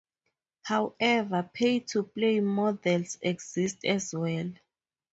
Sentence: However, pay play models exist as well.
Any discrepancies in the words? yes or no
yes